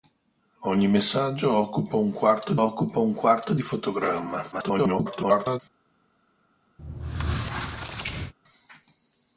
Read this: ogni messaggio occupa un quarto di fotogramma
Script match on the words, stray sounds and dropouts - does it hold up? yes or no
no